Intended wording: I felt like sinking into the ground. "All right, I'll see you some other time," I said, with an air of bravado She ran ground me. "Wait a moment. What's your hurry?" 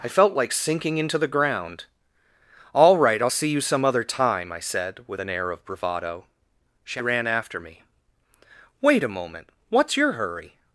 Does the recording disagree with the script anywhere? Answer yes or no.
yes